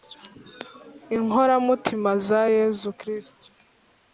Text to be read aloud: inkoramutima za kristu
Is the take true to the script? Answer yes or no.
no